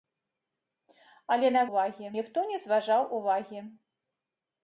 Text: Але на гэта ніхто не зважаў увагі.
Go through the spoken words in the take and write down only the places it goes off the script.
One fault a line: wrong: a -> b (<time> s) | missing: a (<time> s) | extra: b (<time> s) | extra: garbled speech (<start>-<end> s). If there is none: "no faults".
wrong: гэта -> увагі (1.7 s)